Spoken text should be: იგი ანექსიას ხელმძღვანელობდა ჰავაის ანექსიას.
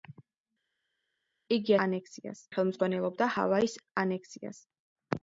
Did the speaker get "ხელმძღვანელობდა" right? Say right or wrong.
right